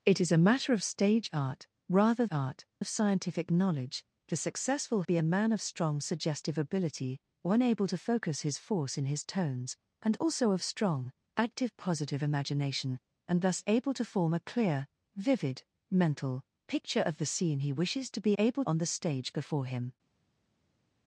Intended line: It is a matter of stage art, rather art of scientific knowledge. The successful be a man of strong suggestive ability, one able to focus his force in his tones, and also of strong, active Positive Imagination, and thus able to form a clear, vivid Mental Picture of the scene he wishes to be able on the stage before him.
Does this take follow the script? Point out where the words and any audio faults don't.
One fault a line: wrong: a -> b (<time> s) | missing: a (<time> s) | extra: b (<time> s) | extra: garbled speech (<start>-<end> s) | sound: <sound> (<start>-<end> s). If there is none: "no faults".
no faults